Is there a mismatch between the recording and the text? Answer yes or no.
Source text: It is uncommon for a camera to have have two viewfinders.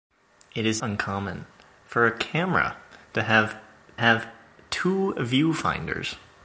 no